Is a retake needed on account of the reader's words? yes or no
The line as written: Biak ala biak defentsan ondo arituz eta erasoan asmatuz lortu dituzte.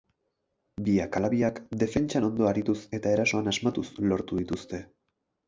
no